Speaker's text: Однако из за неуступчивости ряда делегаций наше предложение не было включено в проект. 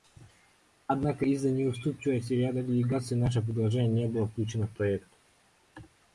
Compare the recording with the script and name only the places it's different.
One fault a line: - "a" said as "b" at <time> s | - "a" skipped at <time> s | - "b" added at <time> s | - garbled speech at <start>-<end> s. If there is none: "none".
none